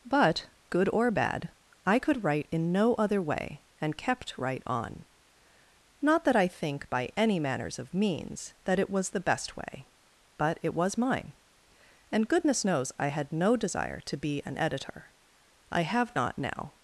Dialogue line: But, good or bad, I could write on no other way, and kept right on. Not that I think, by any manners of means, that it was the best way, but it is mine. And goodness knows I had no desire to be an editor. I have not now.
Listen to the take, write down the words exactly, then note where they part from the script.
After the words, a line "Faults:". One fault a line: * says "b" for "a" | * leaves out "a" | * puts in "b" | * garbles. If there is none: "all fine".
But, good or bad, I could write in no other way, and kept right on. Not that I think, by any manners of means, that it was the best way, but it was mine. And goodness knows I had no desire to be an editor. I have not now.
Faults:
* says "in" for "on"
* says "was" for "is"